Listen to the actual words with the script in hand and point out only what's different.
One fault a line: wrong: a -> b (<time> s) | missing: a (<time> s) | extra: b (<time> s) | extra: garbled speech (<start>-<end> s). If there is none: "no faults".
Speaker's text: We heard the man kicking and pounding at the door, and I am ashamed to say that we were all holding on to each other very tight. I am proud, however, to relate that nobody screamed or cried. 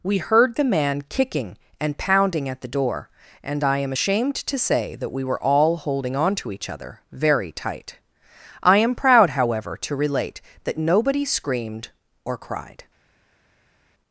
no faults